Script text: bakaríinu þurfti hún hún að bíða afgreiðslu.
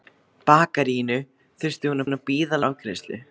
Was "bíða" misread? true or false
false